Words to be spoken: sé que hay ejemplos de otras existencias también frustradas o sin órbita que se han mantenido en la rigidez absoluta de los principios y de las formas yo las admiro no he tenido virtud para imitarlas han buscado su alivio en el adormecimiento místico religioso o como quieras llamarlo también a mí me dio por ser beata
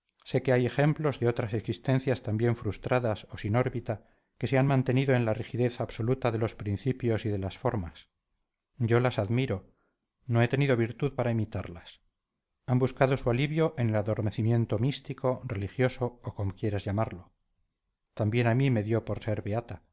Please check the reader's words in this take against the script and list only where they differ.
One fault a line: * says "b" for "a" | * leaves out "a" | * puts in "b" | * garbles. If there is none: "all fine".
all fine